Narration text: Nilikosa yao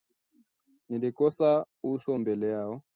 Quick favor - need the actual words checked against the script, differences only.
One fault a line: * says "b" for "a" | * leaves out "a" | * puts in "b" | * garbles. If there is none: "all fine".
* puts in "uso mbele"